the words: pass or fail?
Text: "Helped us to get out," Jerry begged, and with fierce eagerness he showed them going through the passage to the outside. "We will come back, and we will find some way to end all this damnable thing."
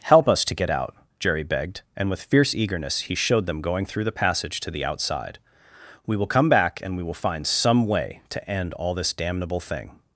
fail